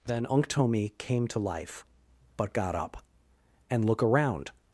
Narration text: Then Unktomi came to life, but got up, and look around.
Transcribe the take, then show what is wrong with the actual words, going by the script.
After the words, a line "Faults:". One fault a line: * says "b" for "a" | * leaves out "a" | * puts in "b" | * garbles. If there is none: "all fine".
Then Unktomi came to life, but got up, and look around.
Faults:
all fine